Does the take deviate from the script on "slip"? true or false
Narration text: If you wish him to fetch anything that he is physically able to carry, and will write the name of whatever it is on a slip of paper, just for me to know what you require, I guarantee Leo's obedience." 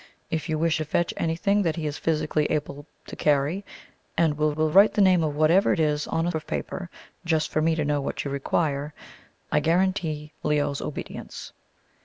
true